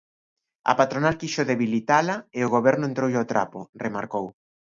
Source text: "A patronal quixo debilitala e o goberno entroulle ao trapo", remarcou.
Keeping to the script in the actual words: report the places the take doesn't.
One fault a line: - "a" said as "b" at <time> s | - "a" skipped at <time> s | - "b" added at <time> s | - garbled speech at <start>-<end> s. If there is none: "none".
none